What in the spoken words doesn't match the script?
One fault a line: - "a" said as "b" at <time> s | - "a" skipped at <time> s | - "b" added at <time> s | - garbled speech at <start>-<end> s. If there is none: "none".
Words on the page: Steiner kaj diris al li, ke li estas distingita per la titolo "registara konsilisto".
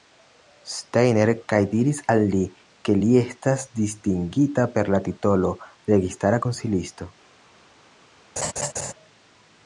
none